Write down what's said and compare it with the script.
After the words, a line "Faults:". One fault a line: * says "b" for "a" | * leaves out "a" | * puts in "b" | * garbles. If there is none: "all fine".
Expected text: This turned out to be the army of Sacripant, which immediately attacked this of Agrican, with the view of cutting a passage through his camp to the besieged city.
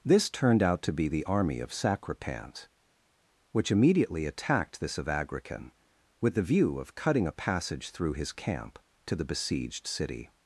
This turned out to be the army of Sacripant, which immediately attacked this of Agrican, with the view of cutting a passage through his camp to the besieged city.
Faults:
all fine